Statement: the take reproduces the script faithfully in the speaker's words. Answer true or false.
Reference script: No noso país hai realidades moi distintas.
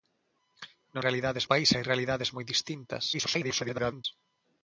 false